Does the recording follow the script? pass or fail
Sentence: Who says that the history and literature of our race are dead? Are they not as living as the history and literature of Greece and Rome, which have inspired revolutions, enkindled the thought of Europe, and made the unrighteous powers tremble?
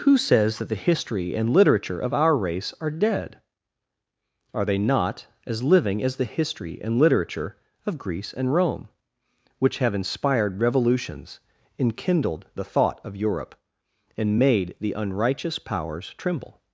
pass